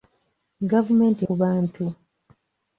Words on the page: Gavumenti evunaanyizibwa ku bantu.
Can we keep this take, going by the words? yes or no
no